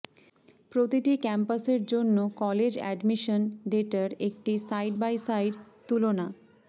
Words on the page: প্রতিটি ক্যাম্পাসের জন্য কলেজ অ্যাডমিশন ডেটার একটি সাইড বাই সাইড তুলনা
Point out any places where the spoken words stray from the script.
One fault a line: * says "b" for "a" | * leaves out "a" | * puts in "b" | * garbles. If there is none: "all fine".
all fine